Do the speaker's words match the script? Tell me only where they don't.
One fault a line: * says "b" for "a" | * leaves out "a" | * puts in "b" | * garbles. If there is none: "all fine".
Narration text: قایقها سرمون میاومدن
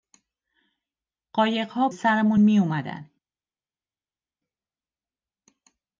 all fine